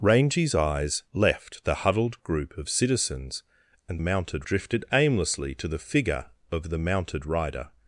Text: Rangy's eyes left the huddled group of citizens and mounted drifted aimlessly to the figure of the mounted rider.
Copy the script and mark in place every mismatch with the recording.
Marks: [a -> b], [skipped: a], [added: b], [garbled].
Rangy's eyes left the huddled group of citizens and mounted drifted aimlessly to the figure of the mounted rider.